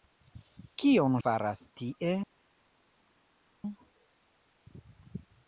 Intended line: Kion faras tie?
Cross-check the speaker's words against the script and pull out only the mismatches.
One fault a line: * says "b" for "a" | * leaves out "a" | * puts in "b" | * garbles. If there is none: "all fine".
all fine